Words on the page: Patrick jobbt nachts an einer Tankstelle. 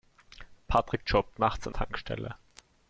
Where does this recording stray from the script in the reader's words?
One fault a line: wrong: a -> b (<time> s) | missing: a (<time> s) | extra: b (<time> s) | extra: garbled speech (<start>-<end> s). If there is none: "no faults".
missing: einer (1.7 s)